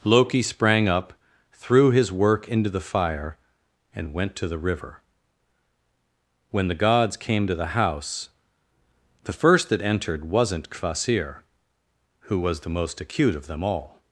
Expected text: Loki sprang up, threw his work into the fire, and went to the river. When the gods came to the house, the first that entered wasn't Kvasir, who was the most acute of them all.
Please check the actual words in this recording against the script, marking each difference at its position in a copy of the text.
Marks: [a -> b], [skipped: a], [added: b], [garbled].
Loki sprang up, threw his work into the fire, and went to the river. When the gods came to the house, the first that entered wasn't Kvasir, who was the most acute of them all.